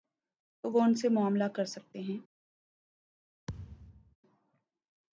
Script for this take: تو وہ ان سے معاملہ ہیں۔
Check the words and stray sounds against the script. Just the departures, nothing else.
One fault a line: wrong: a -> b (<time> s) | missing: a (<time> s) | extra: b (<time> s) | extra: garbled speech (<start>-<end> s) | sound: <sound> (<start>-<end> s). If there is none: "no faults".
extra: کر سکتے (1.4 s)
sound: thud (3.5-4.2 s)